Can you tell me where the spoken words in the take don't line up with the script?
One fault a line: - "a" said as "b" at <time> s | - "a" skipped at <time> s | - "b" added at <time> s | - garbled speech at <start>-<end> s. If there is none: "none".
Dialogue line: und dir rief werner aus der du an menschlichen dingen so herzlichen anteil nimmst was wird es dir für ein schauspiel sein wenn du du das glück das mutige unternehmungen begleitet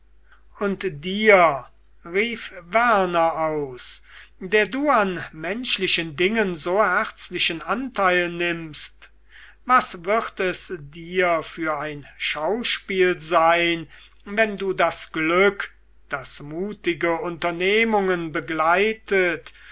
- "du" skipped at 14.7 s